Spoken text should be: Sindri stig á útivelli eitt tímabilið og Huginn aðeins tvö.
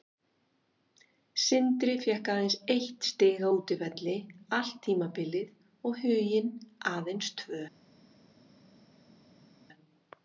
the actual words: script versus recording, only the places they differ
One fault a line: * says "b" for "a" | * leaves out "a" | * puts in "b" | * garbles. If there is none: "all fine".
* puts in "fékk aðeins eitt"
* says "allt" for "eitt"